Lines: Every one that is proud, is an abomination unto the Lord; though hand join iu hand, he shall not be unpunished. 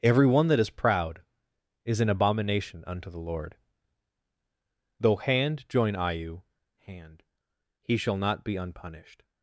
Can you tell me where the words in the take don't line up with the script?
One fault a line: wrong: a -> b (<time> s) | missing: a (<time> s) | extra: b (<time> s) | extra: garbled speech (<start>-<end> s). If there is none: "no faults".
no faults